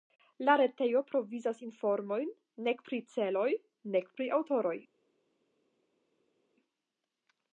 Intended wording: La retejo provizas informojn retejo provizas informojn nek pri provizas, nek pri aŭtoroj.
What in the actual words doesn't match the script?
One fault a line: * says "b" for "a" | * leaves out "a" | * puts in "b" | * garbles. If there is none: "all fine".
* leaves out "retejo provizas informojn"
* says "celoj" for "provizas"